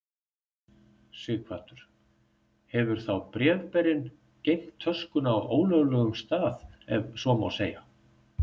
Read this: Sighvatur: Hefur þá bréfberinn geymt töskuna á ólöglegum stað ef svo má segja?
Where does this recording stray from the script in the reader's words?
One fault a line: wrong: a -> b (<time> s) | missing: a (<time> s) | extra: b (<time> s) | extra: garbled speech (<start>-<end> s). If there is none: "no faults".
no faults